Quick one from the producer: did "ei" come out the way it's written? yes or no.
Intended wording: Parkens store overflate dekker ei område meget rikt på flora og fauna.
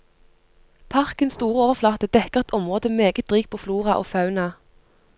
no